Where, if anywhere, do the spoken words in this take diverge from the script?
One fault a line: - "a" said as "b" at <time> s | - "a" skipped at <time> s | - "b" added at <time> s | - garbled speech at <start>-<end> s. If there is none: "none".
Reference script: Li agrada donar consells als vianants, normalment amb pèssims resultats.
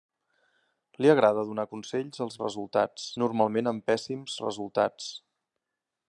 - "vianants" said as "resultats" at 2.5 s